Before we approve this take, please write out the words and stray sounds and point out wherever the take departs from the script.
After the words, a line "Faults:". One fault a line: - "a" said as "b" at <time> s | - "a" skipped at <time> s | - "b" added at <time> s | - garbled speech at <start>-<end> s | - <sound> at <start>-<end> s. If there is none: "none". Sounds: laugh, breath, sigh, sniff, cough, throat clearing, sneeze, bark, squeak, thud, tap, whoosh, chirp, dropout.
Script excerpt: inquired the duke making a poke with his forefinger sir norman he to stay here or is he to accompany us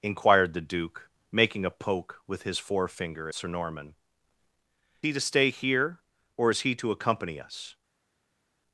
inquired the duke making a poke with his forefinger sir norman he to stay here or is he to accompany us
Faults:
none